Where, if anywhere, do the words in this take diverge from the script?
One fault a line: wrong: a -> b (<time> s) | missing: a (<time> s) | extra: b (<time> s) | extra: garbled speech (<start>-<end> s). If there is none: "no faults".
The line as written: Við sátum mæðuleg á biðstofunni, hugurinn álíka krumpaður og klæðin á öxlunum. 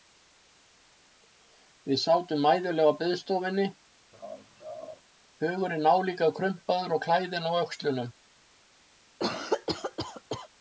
no faults